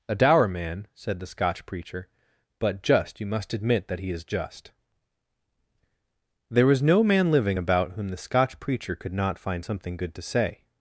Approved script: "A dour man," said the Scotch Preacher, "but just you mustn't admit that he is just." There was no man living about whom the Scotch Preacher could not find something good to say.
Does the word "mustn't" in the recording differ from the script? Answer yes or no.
yes